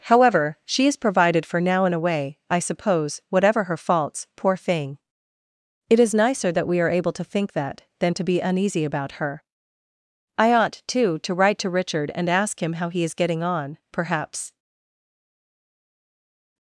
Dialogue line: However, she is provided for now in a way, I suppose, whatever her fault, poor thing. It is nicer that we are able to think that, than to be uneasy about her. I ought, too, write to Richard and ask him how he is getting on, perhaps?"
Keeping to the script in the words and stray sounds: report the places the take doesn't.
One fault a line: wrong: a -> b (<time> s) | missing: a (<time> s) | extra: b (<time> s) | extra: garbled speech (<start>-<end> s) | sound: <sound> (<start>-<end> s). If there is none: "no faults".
wrong: fault -> faults (3.8 s)
extra: to (11.2 s)